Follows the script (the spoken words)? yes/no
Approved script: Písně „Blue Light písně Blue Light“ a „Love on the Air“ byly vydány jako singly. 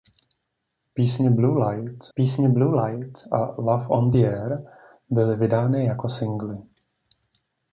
yes